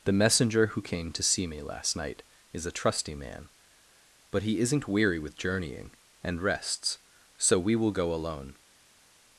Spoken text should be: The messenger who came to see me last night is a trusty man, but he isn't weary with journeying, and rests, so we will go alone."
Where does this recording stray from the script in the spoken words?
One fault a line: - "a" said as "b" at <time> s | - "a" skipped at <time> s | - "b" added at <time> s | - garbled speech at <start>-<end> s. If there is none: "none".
none